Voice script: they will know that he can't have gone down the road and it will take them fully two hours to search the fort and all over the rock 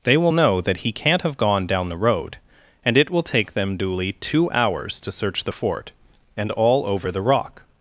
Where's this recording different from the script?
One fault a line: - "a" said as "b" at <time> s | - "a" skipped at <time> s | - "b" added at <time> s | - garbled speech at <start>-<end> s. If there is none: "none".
- "fully" said as "duly" at 3.8 s